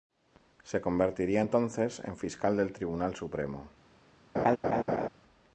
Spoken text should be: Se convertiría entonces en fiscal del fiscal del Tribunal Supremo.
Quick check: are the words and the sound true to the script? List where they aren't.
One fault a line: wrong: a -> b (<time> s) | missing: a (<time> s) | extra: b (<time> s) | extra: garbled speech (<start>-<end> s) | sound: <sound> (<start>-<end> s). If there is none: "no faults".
missing: fiscal del (2.7 s)
sound: laugh (4.3-5.1 s)